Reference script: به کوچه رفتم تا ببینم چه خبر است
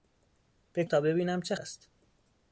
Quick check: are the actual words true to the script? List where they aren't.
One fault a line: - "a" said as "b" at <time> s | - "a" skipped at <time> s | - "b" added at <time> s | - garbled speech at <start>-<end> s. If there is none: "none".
- "کوچه رفتم" skipped at 0.8 s
- "خبر" skipped at 1.5 s